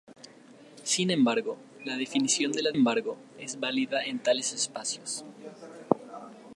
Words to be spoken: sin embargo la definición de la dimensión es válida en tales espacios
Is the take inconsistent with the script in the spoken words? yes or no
yes